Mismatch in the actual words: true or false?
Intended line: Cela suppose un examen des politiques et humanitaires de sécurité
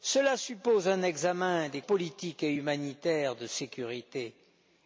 false